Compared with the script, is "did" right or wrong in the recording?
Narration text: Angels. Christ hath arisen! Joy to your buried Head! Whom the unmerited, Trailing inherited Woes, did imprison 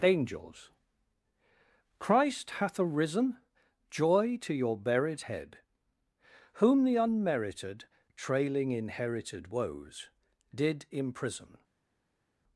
right